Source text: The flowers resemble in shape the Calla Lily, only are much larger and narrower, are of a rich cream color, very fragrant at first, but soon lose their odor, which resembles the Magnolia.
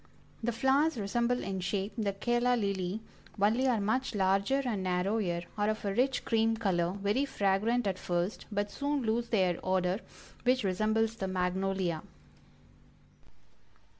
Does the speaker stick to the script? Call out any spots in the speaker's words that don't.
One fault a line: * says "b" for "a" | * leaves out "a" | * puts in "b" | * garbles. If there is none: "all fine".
all fine